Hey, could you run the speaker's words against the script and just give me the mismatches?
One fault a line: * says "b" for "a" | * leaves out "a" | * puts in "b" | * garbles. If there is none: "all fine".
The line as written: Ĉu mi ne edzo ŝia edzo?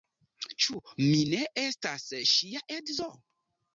* says "estas" for "edzo"